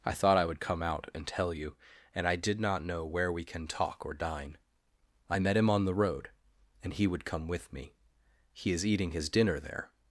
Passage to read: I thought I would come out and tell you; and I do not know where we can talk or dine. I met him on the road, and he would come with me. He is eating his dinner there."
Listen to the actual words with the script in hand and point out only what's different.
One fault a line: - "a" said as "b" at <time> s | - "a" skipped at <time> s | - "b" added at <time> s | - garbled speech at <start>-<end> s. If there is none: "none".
- "do" said as "did" at 2.4 s